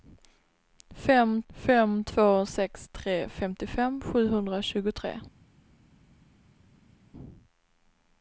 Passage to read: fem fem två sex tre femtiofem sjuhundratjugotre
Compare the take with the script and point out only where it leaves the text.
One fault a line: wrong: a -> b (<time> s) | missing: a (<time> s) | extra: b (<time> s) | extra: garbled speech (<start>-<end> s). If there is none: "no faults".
no faults